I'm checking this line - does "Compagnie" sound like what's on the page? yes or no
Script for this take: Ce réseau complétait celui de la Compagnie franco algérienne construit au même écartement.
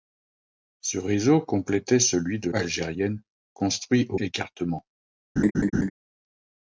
no